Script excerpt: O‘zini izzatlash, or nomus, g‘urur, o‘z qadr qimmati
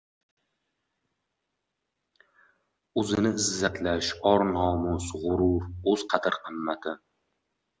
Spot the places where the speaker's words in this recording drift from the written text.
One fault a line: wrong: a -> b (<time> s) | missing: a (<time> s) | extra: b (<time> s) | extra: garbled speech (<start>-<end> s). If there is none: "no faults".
no faults